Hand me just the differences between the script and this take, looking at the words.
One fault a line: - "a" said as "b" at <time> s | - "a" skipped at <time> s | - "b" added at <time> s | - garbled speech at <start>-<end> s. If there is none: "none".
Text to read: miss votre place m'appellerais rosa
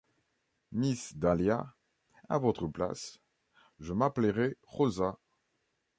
- "dahlia à" added at 1.1 s
- "je" added at 3.8 s